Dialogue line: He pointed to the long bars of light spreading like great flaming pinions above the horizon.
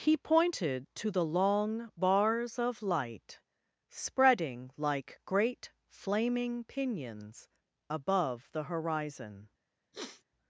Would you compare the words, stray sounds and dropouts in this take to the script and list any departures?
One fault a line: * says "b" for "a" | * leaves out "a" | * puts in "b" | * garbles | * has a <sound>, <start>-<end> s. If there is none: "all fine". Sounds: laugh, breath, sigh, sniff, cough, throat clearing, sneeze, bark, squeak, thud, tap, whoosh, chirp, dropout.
* has a sniff, 9.9-10.2 s